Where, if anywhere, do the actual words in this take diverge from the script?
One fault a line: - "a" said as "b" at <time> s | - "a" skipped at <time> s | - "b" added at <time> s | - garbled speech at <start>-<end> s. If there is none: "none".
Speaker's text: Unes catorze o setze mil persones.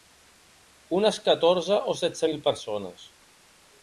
none